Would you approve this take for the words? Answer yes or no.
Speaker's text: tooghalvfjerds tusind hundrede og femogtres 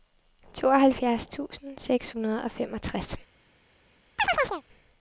no